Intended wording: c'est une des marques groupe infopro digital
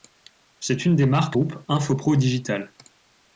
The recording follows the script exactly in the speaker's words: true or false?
true